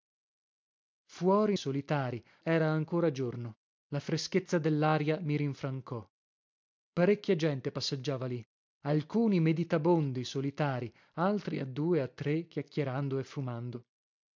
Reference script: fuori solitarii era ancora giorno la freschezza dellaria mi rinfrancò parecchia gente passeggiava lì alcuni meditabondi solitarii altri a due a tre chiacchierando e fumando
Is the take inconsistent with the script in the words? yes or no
no